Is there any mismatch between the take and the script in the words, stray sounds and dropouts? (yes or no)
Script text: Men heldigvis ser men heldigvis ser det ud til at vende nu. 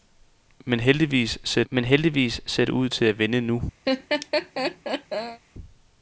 yes